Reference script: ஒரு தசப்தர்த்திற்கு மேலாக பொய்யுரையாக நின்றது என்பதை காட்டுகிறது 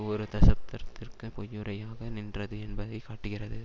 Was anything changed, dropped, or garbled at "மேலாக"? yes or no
yes